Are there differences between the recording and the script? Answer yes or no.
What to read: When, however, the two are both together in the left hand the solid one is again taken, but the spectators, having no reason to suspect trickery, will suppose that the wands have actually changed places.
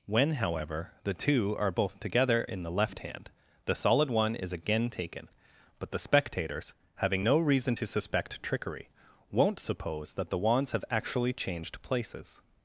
yes